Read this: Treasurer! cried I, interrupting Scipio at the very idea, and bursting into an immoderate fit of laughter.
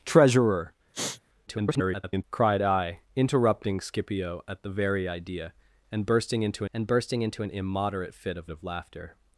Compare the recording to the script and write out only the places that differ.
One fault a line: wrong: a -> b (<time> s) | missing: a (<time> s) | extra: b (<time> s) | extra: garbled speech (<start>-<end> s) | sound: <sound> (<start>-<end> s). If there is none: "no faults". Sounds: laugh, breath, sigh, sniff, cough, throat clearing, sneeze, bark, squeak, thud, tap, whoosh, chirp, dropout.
sound: sniff (0.9-1.2 s)
extra: garbled speech (1.5-2.2 s)
extra: and bursting into (6.7 s)
extra: of (8.5 s)